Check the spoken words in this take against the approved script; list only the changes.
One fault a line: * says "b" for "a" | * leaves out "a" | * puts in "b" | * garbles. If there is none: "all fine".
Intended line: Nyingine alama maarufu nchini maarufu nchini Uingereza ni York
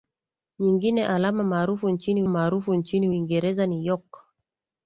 all fine